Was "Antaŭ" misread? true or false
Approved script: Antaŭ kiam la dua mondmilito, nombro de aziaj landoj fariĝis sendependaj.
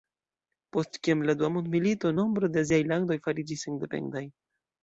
true